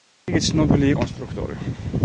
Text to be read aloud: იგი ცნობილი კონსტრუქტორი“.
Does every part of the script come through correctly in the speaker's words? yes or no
yes